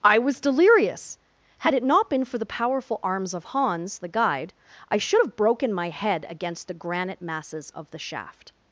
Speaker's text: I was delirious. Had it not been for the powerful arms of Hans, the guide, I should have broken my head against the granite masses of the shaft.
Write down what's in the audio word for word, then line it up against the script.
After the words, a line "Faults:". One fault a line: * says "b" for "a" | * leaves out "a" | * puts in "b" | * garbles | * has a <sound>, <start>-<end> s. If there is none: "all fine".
I was delirious. Had it not been for the powerful arms of Hans, the guide, I should have broken my head against the granite masses of the shaft.
Faults:
all fine